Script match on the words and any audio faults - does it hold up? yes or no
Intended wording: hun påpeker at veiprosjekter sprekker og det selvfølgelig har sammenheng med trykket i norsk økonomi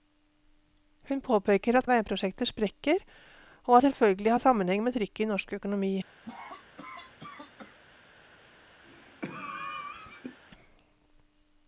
no